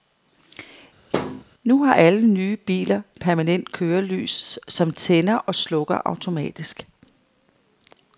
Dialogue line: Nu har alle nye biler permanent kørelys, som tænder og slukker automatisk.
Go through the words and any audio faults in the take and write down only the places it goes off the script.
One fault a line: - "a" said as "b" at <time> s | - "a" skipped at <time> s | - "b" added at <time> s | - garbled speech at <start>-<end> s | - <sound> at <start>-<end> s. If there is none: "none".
- thud at 1.1-1.4 s